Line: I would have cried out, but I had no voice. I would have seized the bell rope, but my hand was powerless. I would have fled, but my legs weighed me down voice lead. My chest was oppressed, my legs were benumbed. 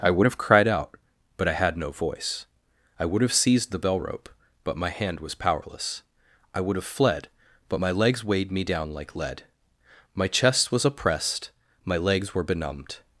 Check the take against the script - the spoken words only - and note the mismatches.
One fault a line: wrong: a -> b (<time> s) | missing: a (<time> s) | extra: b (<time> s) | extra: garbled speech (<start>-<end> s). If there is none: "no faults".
wrong: voice -> like (8.9 s)